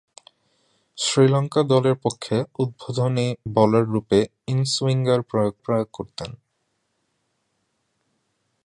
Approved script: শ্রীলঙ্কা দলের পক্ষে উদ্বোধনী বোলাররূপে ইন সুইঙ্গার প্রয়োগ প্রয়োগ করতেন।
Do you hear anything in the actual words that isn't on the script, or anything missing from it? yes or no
no